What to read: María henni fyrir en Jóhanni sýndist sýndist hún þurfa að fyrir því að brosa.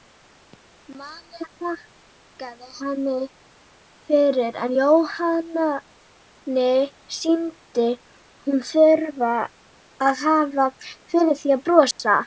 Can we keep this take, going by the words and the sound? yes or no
no